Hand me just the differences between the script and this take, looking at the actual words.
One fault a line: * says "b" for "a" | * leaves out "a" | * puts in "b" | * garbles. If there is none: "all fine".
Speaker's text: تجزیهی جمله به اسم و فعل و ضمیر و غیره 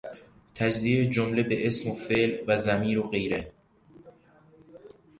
all fine